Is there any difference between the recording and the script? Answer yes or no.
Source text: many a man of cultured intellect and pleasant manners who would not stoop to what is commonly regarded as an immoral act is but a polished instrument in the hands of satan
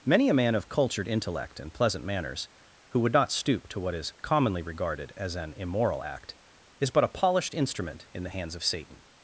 no